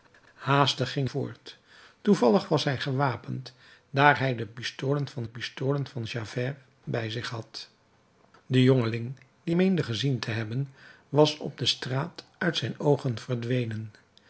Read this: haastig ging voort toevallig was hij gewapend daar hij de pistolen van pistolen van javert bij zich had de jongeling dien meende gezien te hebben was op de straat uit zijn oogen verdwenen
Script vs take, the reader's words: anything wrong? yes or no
no